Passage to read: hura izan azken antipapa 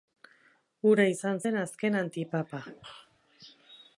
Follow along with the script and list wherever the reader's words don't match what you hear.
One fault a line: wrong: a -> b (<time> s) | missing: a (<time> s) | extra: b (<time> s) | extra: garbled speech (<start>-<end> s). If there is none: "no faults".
extra: zen (1.4 s)